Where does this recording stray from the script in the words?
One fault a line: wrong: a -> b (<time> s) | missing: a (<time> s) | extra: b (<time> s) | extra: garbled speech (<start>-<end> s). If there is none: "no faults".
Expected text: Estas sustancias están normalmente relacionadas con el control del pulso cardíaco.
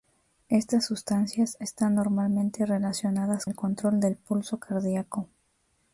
missing: con (3.5 s)